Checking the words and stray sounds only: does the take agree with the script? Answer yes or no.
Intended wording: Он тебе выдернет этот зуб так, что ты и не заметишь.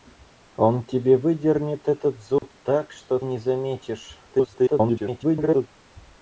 no